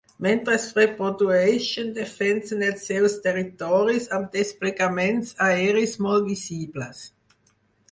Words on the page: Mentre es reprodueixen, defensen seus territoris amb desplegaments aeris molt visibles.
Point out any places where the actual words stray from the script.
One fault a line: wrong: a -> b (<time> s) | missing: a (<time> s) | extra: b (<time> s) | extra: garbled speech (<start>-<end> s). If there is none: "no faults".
extra: els (2.7 s)